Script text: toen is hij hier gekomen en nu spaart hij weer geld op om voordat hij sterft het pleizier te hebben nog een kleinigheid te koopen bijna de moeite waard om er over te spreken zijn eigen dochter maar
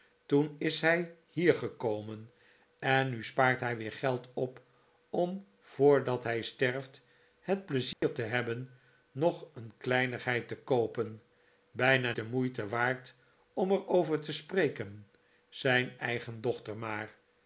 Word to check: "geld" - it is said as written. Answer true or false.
true